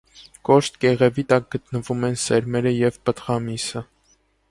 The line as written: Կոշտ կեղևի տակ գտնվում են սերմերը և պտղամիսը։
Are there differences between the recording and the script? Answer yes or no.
no